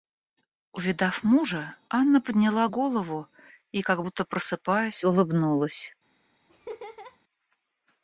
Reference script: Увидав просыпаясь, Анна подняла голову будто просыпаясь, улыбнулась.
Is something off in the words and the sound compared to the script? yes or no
yes